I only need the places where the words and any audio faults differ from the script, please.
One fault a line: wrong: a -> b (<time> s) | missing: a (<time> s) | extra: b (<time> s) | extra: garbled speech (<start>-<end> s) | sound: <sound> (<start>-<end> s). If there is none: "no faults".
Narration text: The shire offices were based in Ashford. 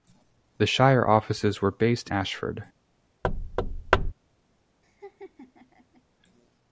missing: in (2.1 s)
sound: thud (3.2-4.1 s)
sound: laugh (4.8-6.0 s)